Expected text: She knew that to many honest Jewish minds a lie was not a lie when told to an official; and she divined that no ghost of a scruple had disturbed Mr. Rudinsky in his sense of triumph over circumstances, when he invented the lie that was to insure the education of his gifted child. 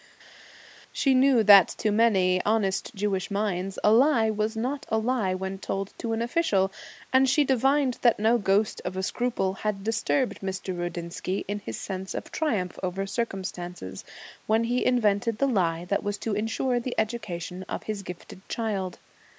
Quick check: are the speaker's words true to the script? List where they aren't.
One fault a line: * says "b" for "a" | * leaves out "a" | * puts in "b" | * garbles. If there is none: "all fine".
all fine